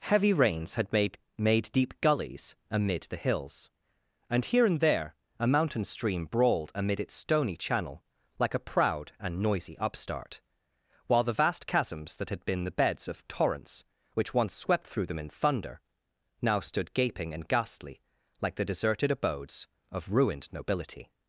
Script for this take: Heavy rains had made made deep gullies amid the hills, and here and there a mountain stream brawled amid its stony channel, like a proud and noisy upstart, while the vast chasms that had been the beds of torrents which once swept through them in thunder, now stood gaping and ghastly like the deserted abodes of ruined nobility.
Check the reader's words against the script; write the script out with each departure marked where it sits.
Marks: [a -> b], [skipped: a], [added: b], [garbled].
Heavy rains had made made deep gullies amid the hills, and here and there a mountain stream brawled amid its stony channel, like a proud and noisy upstart, while the vast chasms that had been the beds of torrents which once swept through them in thunder, now stood gaping and ghastly like the deserted abodes of ruined nobility.